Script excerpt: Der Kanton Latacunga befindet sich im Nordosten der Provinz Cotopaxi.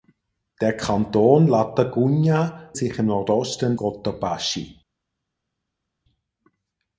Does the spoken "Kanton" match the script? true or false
true